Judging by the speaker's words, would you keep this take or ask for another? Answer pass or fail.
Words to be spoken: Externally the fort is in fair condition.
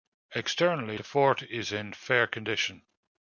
pass